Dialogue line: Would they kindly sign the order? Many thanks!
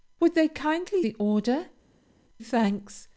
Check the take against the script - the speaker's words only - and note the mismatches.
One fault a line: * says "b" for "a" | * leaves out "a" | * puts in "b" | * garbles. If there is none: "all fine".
* leaves out "sign"
* leaves out "Many"